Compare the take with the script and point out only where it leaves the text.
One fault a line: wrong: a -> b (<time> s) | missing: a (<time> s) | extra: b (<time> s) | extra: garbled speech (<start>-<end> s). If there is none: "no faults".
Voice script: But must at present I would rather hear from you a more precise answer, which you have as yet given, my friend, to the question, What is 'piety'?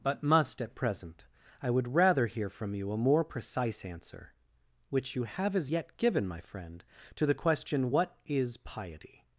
no faults